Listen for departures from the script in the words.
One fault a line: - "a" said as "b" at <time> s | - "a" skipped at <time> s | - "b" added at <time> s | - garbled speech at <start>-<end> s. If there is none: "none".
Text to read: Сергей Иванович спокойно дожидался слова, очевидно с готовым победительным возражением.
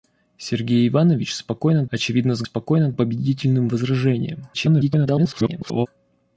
- "дожидался слова" skipped at 1.9 s
- "готовым" said as "спокойно" at 2.4 s
- garbled speech at 4.5-5.9 s